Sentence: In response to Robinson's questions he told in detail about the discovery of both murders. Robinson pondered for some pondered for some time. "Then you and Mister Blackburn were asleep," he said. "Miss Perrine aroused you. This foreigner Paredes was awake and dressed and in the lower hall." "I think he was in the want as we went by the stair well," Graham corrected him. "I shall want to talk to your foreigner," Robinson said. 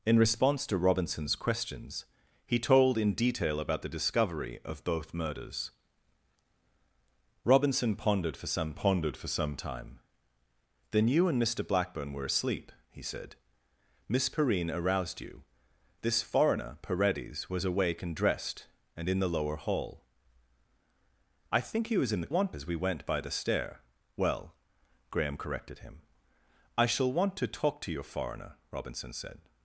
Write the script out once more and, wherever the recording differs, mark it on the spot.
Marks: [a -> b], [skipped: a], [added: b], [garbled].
In response to Robinson's questions he told in detail about the discovery of both murders. Robinson pondered for some pondered for some time. "Then you and Mister Blackburn were asleep," he said. "Miss Perrine aroused you. This foreigner Paredes was awake and dressed and in the lower hall." "I think he was in the want as we went by the stair well," Graham corrected him. "I shall want to talk to your foreigner," Robinson said.